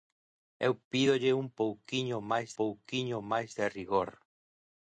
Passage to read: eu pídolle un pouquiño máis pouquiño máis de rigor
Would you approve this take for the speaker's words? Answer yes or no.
yes